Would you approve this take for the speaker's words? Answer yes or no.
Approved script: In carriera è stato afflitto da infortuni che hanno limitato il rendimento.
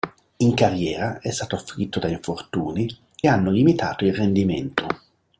no